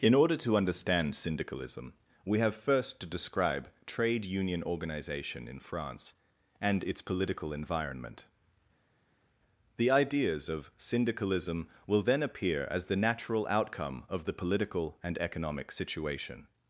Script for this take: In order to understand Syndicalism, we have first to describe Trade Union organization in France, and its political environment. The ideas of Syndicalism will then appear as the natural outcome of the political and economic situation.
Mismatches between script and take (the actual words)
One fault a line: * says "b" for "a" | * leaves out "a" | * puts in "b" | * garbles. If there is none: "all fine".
all fine